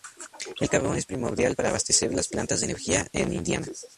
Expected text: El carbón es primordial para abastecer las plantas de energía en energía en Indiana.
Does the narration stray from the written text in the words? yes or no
yes